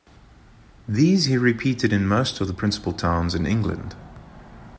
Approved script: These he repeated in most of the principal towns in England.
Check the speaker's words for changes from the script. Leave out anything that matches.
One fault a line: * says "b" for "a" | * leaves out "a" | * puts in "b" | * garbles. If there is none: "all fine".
all fine